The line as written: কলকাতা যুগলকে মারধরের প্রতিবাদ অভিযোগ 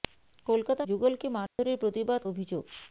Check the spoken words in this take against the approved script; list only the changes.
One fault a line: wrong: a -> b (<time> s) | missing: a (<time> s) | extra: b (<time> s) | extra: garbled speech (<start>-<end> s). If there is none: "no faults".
no faults